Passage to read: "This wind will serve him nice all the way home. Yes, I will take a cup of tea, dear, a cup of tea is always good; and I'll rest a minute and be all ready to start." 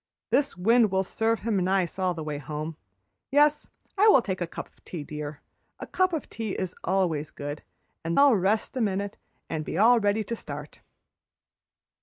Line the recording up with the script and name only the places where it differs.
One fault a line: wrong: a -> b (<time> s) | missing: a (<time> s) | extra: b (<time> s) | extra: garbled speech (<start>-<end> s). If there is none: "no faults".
no faults